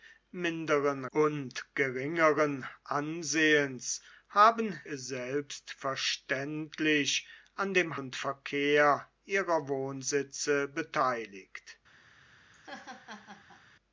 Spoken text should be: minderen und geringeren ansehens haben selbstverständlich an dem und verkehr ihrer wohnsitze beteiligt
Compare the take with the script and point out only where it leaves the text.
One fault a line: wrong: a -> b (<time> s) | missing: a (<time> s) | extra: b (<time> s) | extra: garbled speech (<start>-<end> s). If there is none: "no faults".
no faults